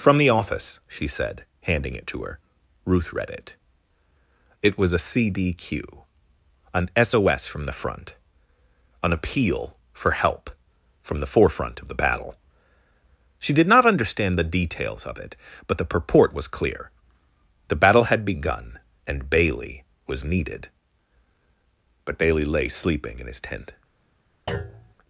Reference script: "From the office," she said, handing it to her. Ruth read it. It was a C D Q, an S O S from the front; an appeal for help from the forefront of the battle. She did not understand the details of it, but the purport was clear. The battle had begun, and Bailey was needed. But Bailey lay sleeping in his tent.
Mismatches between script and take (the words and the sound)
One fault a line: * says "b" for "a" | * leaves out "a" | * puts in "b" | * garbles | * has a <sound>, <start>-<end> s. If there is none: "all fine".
* has a thud, 24.5-24.9 s